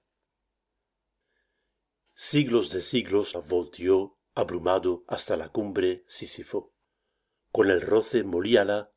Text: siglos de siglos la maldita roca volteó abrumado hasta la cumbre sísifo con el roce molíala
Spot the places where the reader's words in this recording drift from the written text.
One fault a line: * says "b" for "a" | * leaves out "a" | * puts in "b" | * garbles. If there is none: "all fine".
* leaves out "la maldita roca"